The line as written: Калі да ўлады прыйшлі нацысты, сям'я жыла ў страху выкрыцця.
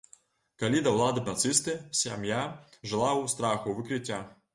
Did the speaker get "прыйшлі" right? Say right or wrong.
wrong